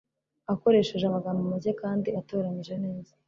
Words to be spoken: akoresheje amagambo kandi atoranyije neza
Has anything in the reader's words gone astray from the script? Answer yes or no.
yes